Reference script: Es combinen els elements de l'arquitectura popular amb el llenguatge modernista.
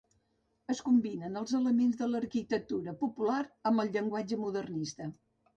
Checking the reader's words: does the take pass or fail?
pass